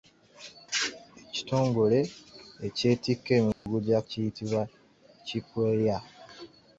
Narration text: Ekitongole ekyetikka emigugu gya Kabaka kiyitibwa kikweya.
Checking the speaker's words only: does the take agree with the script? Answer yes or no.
no